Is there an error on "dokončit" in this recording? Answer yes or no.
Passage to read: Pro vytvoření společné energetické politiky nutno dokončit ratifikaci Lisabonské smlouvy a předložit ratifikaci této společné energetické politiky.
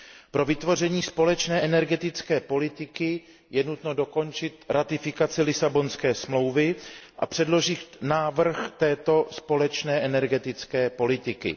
no